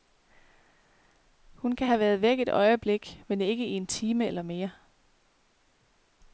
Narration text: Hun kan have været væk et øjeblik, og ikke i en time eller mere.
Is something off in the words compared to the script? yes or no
yes